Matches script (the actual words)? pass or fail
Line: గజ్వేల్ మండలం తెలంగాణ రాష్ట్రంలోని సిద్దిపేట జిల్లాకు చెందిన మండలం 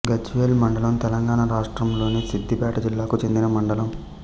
pass